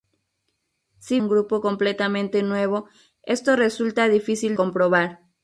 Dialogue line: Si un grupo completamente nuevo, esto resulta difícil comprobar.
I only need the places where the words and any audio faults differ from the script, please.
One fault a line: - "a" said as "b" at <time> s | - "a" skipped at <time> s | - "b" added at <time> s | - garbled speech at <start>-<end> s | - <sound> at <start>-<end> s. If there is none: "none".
none